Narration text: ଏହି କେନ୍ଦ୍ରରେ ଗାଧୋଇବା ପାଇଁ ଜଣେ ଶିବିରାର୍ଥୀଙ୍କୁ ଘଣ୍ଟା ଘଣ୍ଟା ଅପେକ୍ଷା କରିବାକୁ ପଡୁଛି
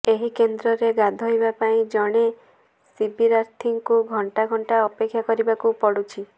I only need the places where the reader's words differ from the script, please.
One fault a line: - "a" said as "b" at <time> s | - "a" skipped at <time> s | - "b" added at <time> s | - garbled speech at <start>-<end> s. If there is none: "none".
none